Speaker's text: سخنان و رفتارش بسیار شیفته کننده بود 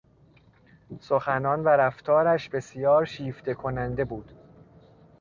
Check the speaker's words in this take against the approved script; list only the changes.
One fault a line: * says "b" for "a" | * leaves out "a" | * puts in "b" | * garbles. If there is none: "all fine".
all fine